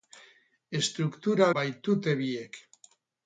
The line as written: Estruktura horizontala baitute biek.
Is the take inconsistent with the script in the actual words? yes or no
yes